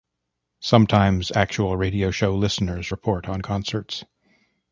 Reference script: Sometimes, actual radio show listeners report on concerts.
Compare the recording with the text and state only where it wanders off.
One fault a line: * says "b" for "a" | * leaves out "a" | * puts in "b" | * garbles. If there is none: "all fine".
all fine